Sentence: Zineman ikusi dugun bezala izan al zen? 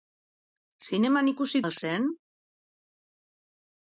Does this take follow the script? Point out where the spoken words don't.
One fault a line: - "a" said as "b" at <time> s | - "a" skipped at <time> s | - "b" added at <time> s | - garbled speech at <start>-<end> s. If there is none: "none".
- "dugun bezala izan" skipped at 1.6 s